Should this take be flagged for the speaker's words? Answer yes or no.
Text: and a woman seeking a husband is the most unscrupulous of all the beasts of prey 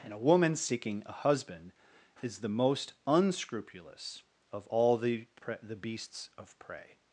yes